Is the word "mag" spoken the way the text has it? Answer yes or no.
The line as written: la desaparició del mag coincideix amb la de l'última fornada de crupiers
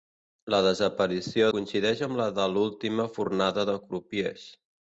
no